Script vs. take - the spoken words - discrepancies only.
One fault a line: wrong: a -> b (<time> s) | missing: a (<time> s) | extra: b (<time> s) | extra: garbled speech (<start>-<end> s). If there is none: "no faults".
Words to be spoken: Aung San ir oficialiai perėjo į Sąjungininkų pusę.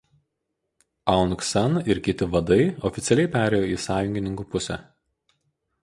extra: kiti vadai (2.1 s)